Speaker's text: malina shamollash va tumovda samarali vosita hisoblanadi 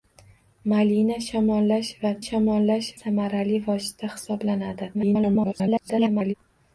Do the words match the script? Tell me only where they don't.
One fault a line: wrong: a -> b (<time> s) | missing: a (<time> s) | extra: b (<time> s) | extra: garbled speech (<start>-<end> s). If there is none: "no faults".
wrong: tumovda -> shamollash (2.2 s)
extra: garbled speech (4.9-6.3 s)